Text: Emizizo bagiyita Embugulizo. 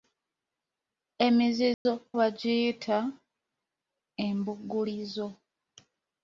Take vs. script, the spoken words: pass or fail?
pass